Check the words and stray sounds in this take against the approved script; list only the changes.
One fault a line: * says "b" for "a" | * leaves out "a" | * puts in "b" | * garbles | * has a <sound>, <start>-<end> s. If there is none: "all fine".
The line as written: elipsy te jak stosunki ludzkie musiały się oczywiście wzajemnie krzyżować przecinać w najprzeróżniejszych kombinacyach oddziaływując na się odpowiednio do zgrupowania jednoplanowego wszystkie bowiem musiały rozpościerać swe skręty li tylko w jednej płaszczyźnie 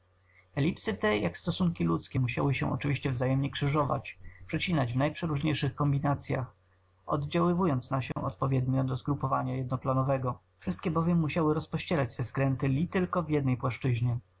* has a dropout, 8.1-8.2 s